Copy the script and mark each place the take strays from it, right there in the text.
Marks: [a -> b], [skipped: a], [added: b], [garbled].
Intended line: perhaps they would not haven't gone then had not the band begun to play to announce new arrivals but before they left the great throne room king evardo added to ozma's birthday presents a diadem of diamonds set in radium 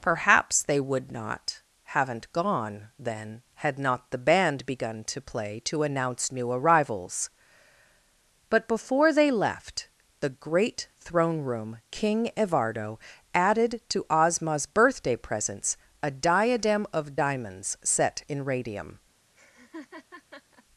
perhaps they would not haven't gone then had not the band begun to play to announce new arrivals but before they left the great throne room king evardo added to ozma's birthday presents a diadem of diamonds set in radium